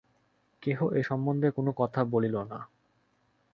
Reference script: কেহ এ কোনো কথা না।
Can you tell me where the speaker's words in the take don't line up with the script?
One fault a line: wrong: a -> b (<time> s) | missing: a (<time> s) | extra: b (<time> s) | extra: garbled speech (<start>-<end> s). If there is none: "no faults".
extra: সম্বন্ধে (1.0 s)
extra: বলিল (2.0 s)